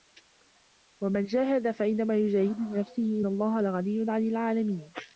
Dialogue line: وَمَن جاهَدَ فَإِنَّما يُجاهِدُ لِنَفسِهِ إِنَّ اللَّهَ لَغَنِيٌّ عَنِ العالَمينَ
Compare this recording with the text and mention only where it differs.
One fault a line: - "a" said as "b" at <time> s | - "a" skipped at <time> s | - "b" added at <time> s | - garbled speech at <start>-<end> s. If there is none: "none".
- "إِنَّ" skipped at 3.2 s